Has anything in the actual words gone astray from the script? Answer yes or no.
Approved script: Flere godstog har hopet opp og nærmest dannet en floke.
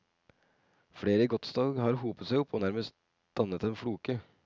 yes